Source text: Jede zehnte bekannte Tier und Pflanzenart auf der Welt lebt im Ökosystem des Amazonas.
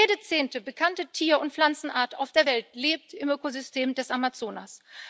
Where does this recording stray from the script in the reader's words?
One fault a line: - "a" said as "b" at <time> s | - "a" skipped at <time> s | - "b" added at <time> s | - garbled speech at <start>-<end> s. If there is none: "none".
none